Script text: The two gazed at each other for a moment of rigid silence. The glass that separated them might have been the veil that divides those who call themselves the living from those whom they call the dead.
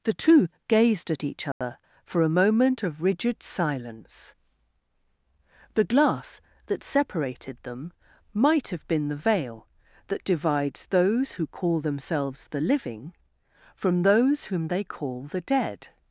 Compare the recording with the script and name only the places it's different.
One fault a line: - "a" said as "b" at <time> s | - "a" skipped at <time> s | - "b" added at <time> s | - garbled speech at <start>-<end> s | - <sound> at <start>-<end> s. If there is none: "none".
- dropout at 1.5-1.6 s